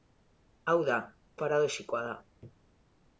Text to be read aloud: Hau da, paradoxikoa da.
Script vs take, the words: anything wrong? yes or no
no